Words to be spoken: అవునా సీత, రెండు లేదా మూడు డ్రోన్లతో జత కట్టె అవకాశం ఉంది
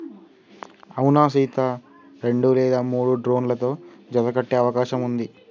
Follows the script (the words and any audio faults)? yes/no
yes